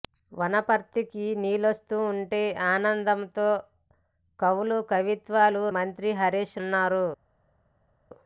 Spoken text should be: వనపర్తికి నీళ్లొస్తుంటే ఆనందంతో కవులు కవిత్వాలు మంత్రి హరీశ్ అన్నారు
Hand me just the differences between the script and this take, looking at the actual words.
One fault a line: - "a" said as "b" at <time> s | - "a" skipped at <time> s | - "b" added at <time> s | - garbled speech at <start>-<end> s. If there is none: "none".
none